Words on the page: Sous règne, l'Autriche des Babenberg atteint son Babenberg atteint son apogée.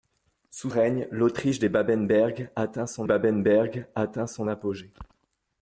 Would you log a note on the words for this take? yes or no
no